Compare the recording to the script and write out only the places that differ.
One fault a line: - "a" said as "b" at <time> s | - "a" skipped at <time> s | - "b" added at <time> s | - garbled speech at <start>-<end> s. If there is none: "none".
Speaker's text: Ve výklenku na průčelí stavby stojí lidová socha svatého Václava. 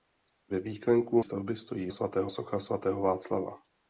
- "na průčelí" skipped at 1.2 s
- "lidová" said as "svatého" at 1.9 s